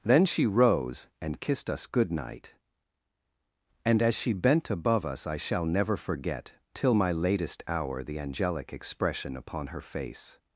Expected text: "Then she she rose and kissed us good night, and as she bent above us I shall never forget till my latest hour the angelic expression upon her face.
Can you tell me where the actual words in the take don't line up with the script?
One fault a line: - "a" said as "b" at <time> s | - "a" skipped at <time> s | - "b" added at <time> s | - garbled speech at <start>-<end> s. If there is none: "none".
- "she" skipped at 0.5 s